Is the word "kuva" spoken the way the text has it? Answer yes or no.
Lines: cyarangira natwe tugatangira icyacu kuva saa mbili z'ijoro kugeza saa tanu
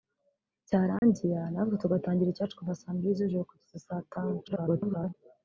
yes